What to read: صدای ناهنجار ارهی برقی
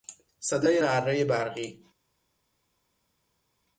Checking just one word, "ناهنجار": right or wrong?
wrong